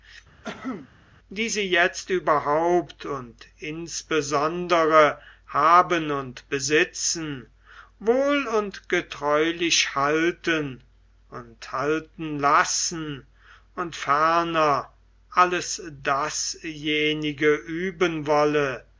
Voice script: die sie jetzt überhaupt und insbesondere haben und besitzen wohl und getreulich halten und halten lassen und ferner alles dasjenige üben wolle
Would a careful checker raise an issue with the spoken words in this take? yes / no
no